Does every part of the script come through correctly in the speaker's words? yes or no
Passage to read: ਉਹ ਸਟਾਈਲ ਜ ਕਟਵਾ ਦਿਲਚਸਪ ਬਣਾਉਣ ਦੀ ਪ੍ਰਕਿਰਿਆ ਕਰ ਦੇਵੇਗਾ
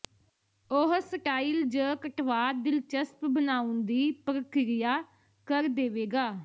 yes